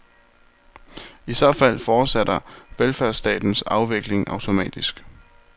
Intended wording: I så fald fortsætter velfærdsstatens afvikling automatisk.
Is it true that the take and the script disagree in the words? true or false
false